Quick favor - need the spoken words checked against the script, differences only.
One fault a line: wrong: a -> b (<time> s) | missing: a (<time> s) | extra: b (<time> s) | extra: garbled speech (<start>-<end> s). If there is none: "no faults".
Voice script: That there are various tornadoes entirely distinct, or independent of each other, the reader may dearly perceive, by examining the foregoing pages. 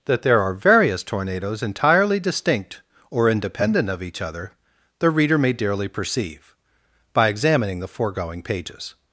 no faults